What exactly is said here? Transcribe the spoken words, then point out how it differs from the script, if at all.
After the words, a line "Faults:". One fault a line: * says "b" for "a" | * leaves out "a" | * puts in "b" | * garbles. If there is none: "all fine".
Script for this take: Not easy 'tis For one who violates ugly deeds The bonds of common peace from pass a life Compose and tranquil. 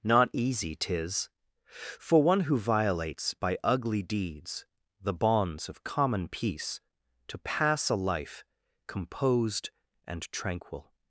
Not easy 'tis For one who violates by ugly deeds The bonds of common peace to pass a life Composed and tranquil.
Faults:
* puts in "by"
* says "to" for "from"
* says "Composed" for "Compose"